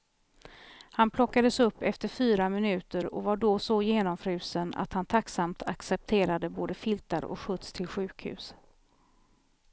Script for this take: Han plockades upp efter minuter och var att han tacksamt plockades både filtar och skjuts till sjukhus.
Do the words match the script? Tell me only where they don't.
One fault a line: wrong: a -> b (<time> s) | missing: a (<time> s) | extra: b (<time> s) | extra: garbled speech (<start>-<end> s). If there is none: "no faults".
extra: fyra (2.1 s)
extra: då så genomfrusen (3.4 s)
wrong: plockades -> accepterade (5.6 s)